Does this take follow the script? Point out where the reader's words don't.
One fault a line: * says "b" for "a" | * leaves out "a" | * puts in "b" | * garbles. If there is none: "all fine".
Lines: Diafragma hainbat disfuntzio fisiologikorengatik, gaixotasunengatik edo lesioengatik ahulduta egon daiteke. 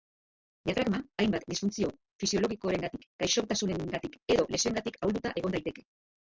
all fine